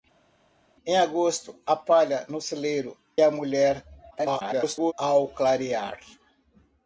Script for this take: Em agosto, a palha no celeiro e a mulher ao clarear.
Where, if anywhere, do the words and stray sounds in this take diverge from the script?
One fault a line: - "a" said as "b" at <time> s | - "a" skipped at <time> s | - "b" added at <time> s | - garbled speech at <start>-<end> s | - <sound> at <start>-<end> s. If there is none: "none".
- "e" skipped at 3.0 s
- garbled speech at 4.1-4.9 s